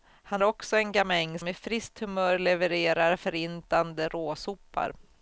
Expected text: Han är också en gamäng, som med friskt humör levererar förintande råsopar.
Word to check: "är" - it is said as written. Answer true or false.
false